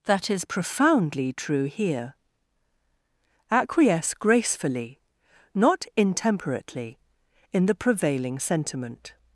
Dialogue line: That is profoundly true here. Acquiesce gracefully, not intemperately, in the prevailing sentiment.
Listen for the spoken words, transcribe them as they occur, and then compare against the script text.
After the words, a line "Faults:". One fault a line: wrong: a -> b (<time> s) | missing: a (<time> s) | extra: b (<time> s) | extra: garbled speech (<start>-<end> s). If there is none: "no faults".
That is profoundly true here. Acquiesce gracefully, not intemperately, in the prevailing sentiment.
Faults:
no faults